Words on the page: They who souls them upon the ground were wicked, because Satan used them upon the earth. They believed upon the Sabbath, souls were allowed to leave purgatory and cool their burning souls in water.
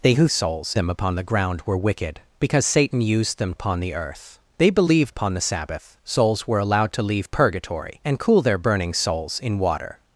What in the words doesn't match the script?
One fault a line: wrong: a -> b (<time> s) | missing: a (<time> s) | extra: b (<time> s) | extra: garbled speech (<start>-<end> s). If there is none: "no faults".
no faults